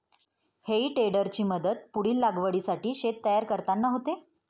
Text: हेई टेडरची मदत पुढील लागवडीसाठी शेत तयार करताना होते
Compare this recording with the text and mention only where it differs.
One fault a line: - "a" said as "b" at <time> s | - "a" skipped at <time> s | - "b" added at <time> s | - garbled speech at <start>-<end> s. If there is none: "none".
none